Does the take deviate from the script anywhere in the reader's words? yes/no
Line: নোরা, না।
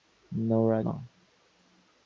no